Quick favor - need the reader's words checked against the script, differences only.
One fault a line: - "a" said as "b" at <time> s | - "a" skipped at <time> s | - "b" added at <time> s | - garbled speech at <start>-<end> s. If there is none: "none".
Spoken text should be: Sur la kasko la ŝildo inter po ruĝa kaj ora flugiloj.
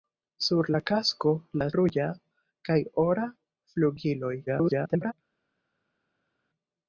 - "ŝildo inter po" skipped at 1.7 s
- garbled speech at 4.5-5.1 s